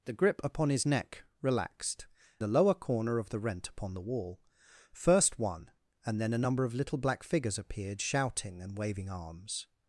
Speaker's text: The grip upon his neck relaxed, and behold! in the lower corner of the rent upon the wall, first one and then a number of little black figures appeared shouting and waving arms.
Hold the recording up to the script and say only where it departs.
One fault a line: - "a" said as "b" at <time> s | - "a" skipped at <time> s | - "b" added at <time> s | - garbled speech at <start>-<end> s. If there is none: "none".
- "and behold in" skipped at 2.1 s